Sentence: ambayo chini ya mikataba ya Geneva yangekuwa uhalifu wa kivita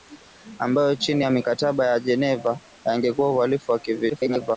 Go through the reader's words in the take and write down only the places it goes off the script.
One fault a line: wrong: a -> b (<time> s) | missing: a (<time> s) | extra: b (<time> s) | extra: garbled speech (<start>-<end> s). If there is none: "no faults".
extra: garbled speech (4.1-4.6 s)